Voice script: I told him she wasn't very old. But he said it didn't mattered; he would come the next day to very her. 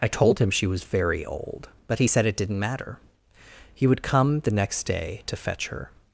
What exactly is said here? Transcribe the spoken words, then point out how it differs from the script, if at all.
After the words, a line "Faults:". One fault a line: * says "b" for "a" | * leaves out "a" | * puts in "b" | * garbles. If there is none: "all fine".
I told him she was very old. But he said it didn't matter; he would come the next day to fetch her.
Faults:
* says "was" for "wasn't"
* says "matter" for "mattered"
* says "fetch" for "very"